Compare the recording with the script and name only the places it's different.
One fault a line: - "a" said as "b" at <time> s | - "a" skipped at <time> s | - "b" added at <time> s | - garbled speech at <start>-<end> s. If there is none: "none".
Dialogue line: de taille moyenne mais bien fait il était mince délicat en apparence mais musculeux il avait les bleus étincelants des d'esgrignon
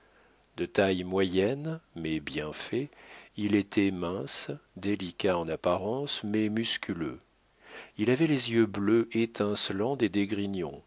- "yeux" added at 8.5 s